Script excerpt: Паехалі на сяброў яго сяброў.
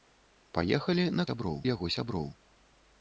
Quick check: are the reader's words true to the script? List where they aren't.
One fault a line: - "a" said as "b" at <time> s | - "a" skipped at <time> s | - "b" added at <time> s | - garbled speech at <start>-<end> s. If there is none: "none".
none